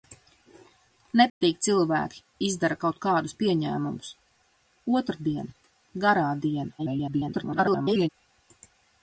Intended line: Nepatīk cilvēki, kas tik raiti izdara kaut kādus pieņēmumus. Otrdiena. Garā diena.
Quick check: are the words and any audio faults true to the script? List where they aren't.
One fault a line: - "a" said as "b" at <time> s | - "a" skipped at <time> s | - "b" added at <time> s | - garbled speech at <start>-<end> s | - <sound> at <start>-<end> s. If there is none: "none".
- dropout at 1.3-1.4 s
- "kas tik raiti" skipped at 2.2 s
- garbled speech at 6.8-8.1 s